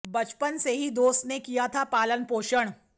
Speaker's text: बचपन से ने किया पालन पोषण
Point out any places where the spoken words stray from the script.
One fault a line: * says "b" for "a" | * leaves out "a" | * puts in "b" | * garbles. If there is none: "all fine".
* puts in "ही दोस्त"
* puts in "था"